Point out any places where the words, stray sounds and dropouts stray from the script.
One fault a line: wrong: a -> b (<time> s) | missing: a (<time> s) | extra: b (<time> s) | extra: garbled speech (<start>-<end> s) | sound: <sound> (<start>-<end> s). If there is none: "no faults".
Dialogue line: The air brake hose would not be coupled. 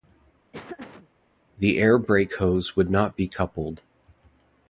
sound: laugh (0.5-1.1 s)